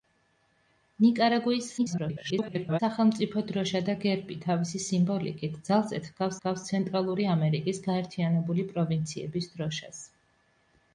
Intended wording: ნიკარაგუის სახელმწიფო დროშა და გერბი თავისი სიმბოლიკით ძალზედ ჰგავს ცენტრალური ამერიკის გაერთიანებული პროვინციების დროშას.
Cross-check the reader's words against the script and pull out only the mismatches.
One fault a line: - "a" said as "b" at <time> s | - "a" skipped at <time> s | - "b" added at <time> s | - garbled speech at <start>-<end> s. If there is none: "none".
- garbled speech at 1.8-2.8 s
- "ჰგავს" added at 6.3 s